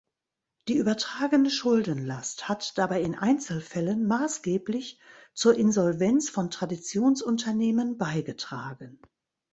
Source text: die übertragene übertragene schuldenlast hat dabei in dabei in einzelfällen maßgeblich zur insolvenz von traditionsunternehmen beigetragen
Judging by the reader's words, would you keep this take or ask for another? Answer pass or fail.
fail